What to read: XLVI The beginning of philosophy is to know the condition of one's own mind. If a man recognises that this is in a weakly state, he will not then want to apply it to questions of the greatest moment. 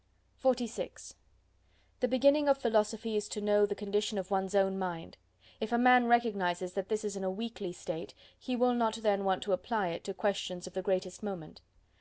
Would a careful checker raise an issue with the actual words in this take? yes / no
no